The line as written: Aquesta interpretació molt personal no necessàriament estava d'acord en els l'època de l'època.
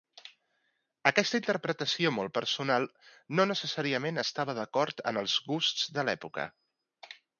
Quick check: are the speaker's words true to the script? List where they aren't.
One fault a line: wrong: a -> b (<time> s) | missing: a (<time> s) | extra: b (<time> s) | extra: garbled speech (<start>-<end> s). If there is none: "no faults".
wrong: l'època -> gusts (5.5 s)